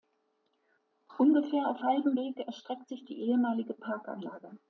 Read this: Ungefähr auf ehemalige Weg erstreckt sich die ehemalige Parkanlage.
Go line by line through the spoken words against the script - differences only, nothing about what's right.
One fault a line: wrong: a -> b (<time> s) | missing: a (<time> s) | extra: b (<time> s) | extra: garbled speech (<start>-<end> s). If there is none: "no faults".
wrong: ehemalige -> halbem (1.8 s)